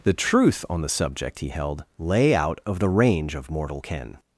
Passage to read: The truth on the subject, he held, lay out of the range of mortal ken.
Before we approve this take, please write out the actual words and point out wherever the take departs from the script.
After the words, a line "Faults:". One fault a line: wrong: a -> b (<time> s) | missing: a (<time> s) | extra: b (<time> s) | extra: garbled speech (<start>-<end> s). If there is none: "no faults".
The truth on the subject, he held, lay out of the range of mortal ken.
Faults:
no faults